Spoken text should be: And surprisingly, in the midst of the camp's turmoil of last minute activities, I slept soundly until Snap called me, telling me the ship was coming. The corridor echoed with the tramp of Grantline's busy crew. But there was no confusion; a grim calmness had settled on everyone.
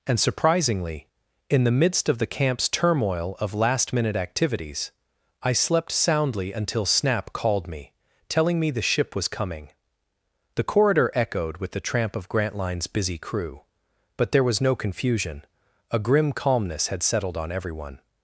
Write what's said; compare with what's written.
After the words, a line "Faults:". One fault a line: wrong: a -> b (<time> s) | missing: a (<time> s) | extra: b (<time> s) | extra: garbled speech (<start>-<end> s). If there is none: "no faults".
And surprisingly, in the midst of the camp's turmoil of last minute activities, I slept soundly until Snap called me, telling me the ship was coming. The corridor echoed with the tramp of Grantline's busy crew. But there was no confusion; a grim calmness had settled on everyone.
Faults:
no faults